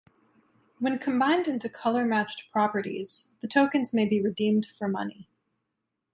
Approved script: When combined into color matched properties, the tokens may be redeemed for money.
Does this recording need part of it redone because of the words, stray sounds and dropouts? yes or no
no